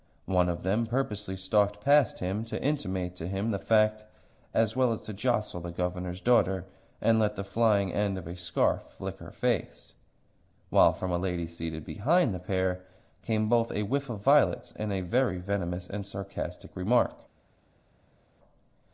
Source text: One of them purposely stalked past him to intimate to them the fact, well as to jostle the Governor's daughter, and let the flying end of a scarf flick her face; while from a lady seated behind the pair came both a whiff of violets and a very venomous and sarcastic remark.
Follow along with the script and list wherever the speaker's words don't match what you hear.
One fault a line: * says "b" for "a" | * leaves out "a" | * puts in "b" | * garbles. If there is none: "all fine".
* says "him" for "them"
* puts in "as"